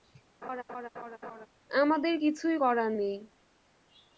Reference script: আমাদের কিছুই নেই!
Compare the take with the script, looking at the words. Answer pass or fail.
fail